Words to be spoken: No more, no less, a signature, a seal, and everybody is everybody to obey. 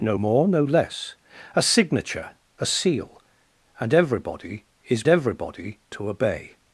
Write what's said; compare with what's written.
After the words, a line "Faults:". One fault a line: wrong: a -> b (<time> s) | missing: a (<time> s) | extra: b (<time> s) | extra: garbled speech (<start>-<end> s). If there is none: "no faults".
No more, no less, a signature, a seal, and everybody is everybody to obey.
Faults:
no faults